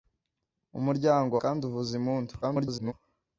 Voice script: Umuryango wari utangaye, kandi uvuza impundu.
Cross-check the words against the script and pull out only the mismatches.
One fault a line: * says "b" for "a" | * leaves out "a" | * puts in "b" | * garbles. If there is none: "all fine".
* leaves out "wari utangaye"
* garbles